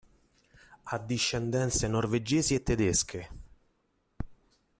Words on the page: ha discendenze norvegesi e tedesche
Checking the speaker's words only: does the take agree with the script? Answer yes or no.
yes